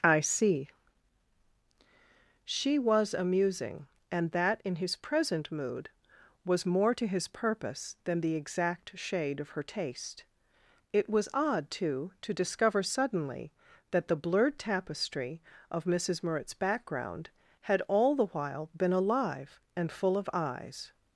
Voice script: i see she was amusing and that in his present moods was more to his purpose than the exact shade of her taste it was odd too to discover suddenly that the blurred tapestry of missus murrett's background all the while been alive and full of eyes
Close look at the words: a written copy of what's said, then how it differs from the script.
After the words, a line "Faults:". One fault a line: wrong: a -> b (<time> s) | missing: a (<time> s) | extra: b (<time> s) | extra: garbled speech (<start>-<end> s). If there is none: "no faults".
i see she was amusing and that in his present mood was more to his purpose than the exact shade of her taste it was odd too to discover suddenly that the blurred tapestry of missus murrett's background had all the while been alive and full of eyes
Faults:
wrong: moods -> mood (5.5 s)
extra: had (17.6 s)